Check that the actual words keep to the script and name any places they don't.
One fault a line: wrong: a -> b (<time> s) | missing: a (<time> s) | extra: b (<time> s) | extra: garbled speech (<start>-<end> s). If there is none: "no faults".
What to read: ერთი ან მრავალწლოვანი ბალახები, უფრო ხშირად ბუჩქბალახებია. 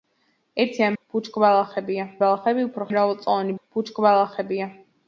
wrong: მრავალწლოვანი -> ბუჩქბალახებია (0.9 s)
wrong: ხშირად -> მრავალწლოვანი (3.0 s)